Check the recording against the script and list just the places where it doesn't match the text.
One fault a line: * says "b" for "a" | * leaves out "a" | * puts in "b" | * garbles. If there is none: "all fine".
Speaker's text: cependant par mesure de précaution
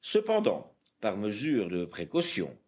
all fine